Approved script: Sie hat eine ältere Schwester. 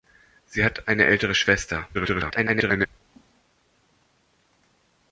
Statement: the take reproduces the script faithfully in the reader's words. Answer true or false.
false